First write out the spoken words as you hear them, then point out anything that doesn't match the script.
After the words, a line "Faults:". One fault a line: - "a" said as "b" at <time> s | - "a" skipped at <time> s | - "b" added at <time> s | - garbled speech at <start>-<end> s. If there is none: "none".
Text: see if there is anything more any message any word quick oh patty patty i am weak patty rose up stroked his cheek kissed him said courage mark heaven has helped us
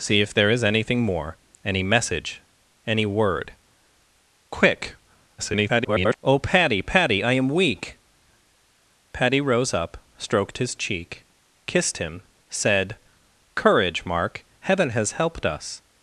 see if there is anything more any message any word quick [garbled] oh patty patty i am weak patty rose up stroked his cheek kissed him said courage mark heaven has helped us
Faults:
- garbled speech at 5.4-6.2 s